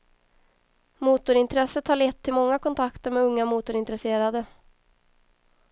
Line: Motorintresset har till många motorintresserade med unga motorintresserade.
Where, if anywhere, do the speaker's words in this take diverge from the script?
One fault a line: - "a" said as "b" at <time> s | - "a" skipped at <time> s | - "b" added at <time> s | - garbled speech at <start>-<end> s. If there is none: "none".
- "lett" added at 1.9 s
- "motorintresserade" said as "kontakter" at 2.6 s